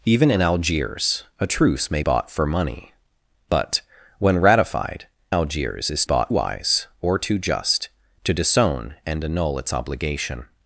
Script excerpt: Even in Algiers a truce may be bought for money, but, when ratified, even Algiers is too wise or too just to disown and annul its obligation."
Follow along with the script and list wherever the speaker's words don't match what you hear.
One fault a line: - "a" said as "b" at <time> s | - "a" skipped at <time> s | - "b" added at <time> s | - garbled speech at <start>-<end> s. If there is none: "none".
- "be" skipped at 2.0 s
- "even" skipped at 5.1 s
- "too" said as "bought" at 6.0 s